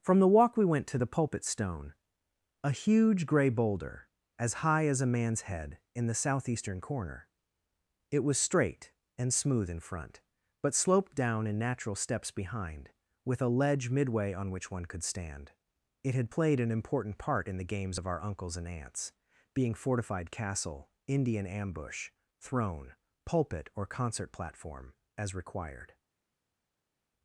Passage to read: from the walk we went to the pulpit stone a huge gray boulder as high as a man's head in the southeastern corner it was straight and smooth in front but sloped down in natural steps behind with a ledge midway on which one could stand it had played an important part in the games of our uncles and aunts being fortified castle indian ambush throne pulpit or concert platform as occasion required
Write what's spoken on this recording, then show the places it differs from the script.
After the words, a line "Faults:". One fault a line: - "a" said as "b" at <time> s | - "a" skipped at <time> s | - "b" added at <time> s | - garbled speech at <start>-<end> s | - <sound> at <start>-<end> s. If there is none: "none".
from the walk we went to the pulpit stone a huge gray boulder as high as a man's head in the southeastern corner it was straight and smooth in front but sloped down in natural steps behind with a ledge midway on which one could stand it had played an important part in the games of our uncles and aunts being fortified castle indian ambush throne pulpit or concert platform as required
Faults:
- "occasion" skipped at 25.3 s